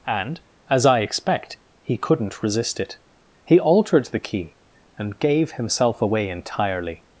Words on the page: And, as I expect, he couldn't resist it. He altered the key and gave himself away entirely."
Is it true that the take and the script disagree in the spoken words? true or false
false